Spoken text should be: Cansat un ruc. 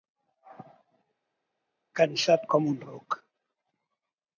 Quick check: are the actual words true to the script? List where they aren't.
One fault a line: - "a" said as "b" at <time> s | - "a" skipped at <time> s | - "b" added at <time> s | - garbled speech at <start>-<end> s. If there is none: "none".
- "com" added at 2.5 s